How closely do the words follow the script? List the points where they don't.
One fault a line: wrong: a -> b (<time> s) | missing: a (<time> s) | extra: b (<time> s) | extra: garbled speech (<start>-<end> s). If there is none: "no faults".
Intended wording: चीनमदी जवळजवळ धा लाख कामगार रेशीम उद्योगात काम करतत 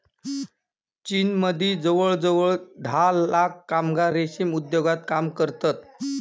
no faults